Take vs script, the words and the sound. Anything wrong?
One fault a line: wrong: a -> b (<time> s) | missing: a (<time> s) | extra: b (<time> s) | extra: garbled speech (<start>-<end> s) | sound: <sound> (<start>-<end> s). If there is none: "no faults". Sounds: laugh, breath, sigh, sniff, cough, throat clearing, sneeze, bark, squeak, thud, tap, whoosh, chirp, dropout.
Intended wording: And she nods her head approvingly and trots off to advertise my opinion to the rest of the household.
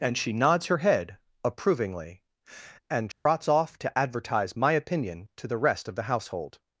sound: dropout (3.1-3.3 s)